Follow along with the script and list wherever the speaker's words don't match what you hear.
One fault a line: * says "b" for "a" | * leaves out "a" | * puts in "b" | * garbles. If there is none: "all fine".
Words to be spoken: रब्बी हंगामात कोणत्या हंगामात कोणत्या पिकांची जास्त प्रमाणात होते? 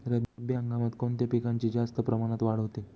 * leaves out "हंगामात कोणत्या"
* puts in "वाढ"